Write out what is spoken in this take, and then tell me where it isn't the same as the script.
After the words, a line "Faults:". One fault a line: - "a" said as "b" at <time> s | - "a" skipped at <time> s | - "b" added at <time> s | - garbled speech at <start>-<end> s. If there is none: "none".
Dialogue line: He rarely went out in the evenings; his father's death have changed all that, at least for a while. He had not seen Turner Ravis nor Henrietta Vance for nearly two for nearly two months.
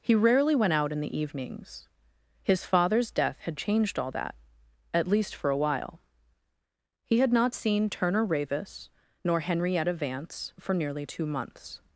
He rarely went out in the evenings; his father's death had changed all that, at least for a while. He had not seen Turner Ravis nor Henrietta Vance for nearly two months.
Faults:
- "have" said as "had" at 3.4 s
- "for nearly two" skipped at 11.2 s